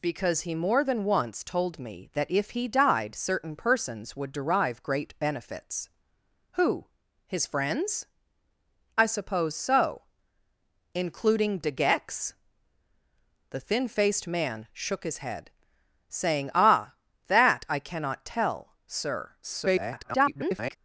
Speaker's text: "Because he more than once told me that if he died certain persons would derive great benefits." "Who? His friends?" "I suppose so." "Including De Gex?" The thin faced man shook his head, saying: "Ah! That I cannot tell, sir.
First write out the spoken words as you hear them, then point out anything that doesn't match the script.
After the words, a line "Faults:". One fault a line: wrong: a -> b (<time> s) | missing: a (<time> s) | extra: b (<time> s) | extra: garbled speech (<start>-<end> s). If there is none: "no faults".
"Because he more than once told me that if he died certain persons would derive great benefits." "Who? His friends?" "I suppose so." "Including De Gex?" The thin faced man shook his head, saying: "Ah! That I cannot tell, sir. [garbled]
Faults:
extra: garbled speech (19.4-20.8 s)